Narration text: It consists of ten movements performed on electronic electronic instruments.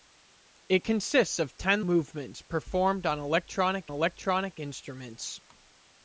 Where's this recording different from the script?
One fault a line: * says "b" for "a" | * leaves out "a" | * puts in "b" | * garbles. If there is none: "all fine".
all fine